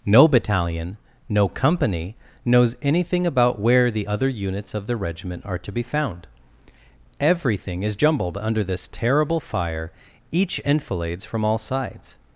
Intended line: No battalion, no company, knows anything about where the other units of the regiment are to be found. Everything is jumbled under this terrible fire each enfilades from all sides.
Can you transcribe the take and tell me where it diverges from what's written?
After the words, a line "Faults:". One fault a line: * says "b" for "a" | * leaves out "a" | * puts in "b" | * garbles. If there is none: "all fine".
No battalion, no company, knows anything about where the other units of the regiment are to be found. Everything is jumbled under this terrible fire each enfilades from all sides.
Faults:
all fine